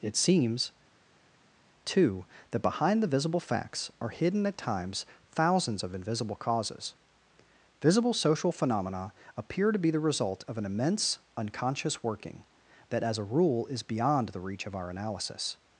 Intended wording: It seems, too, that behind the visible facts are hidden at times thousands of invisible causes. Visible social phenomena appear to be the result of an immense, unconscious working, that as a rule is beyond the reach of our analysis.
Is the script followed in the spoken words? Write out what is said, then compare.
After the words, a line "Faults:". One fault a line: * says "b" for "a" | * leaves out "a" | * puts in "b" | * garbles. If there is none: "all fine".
It seems, too, that behind the visible facts are hidden at times thousands of invisible causes. Visible social phenomena appear to be the result of an immense, unconscious working, that as a rule is beyond the reach of our analysis.
Faults:
all fine